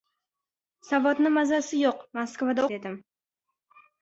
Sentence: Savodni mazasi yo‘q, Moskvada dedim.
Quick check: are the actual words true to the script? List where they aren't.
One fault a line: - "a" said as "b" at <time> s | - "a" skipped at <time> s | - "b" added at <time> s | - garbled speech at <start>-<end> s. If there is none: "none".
none